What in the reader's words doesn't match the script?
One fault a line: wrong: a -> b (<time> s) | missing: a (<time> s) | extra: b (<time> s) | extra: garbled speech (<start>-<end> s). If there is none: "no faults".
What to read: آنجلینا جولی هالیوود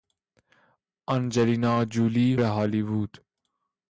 no faults